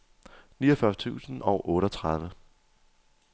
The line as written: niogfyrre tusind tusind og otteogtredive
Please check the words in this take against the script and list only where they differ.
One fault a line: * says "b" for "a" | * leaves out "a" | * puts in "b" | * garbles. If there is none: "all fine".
* leaves out "tusind"